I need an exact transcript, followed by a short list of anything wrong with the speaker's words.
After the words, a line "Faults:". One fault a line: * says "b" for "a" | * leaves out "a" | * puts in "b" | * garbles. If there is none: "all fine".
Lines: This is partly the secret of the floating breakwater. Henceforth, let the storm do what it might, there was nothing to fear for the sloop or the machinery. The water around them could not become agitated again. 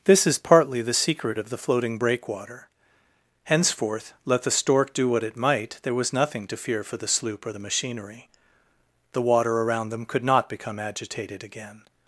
This is partly the secret of the floating breakwater. Henceforth, let the stork do what it might, there was nothing to fear for the sloop or the machinery. The water around them could not become agitated again.
Faults:
* says "stork" for "storm"